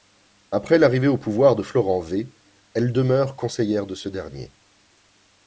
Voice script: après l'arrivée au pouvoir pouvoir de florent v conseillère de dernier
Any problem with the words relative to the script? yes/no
yes